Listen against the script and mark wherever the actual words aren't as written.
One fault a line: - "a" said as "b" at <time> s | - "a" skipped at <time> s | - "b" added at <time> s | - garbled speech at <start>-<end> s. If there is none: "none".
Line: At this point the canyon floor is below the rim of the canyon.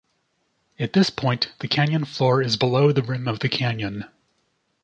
none